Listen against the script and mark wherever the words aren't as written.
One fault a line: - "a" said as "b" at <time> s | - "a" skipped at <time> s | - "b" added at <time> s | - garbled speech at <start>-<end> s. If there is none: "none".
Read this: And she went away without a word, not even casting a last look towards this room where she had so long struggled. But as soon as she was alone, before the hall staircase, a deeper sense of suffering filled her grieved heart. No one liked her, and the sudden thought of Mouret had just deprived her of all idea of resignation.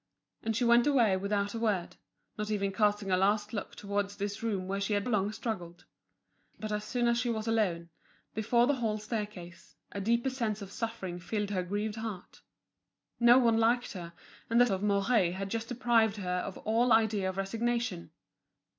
- "so" skipped at 5.1 s
- "sudden thought" skipped at 14.6 s